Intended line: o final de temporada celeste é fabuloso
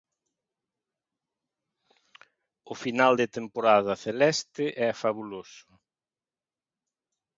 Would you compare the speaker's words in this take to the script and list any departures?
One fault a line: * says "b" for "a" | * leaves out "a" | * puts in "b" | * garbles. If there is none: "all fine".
all fine